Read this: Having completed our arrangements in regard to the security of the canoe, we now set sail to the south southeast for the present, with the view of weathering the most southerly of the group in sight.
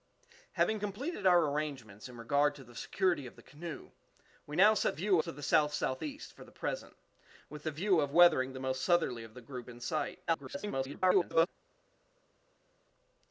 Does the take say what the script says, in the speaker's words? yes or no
no